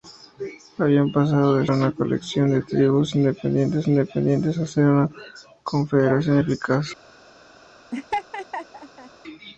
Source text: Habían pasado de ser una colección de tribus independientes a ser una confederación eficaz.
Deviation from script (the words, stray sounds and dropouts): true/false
true